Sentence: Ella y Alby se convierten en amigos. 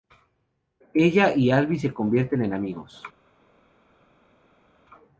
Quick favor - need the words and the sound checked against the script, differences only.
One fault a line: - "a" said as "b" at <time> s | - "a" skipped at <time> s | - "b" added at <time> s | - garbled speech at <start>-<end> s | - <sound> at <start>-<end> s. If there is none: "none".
none